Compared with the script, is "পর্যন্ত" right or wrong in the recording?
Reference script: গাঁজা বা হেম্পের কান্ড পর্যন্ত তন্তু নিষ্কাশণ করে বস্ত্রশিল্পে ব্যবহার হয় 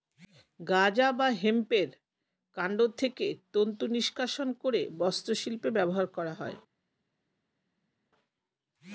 wrong